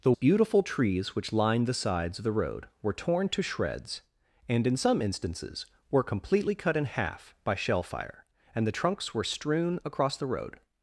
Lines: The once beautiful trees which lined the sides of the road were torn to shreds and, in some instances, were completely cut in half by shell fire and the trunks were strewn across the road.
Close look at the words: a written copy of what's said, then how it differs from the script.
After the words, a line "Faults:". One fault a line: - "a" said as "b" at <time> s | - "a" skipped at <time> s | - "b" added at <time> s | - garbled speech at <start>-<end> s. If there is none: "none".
The beautiful trees which lined the sides of the road were torn to shreds and, in some instances, were completely cut in half by shell fire and the trunks were strewn across the road.
Faults:
- "once" skipped at 0.1 s